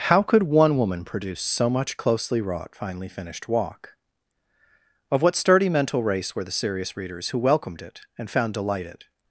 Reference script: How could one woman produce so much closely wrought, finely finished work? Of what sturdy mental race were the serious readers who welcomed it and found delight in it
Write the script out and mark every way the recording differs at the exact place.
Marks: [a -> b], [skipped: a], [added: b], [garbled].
How could one woman produce so much closely wrought, finely finished [work? -> walk] Of what sturdy mental race were the serious readers who welcomed it and found delight [skipped: in] it